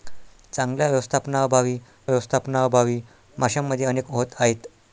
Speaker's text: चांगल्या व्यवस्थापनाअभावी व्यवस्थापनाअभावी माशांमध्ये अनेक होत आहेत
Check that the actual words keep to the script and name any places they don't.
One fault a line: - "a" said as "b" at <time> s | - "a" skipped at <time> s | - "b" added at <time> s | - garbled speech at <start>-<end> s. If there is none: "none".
none